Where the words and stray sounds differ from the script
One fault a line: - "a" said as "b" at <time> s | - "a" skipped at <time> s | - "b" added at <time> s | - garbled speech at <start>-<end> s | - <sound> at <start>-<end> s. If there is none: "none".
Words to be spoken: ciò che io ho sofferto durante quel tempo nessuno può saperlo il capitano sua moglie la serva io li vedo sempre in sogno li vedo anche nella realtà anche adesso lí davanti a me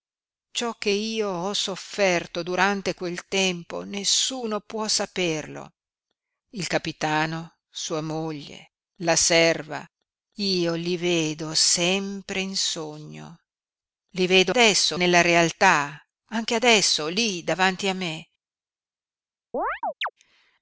- "anche" said as "adesso" at 14.5 s
- chirp at 19.5-20.1 s